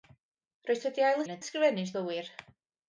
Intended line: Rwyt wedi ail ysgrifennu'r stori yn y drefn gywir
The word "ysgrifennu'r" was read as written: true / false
false